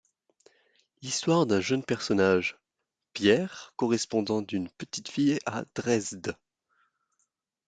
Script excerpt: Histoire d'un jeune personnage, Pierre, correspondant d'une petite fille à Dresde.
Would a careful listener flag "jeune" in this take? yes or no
no